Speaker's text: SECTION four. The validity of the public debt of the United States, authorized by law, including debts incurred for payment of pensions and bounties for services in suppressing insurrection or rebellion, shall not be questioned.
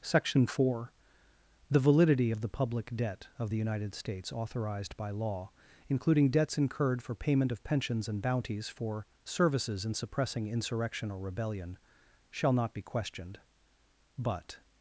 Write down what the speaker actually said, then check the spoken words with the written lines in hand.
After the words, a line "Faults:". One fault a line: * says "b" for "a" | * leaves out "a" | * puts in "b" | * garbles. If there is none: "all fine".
SECTION four. The validity of the public debt of the United States, authorized by law, including debts incurred for payment of pensions and bounties for services in suppressing insurrection or rebellion, shall not be questioned. But
Faults:
* puts in "But"